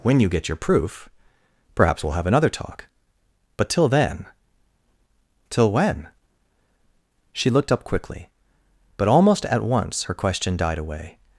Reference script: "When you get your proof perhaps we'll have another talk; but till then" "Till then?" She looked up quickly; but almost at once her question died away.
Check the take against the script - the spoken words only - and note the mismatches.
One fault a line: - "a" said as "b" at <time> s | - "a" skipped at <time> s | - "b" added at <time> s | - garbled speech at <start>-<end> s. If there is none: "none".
- "then" said as "when" at 5.7 s